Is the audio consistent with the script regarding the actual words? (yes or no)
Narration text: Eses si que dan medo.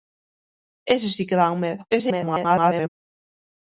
no